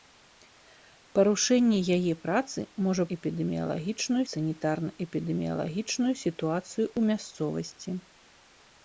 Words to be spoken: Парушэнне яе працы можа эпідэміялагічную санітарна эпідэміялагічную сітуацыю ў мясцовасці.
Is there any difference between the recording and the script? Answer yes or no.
no